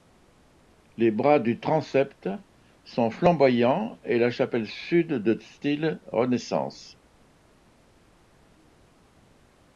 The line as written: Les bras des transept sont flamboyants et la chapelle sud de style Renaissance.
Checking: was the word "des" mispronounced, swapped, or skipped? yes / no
yes